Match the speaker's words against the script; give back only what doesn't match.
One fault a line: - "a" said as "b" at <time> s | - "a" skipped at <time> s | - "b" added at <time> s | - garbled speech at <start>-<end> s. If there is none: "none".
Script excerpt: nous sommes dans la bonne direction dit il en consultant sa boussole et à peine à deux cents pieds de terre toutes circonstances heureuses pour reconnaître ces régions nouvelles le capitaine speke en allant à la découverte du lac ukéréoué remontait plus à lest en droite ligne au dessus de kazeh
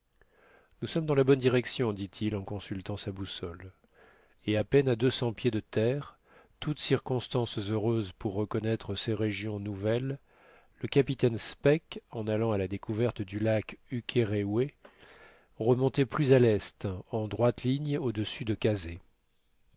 none